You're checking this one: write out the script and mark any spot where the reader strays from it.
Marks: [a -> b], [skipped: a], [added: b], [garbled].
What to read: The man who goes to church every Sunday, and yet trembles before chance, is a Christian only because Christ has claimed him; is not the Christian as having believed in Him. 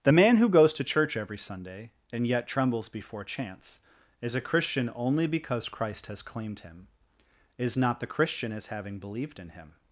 The man who goes to church every Sunday, and yet trembles before chance, is a Christian only because Christ has claimed him; is not the Christian as having believed in Him.